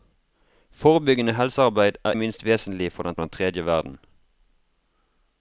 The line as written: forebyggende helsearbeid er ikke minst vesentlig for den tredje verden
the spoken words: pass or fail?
fail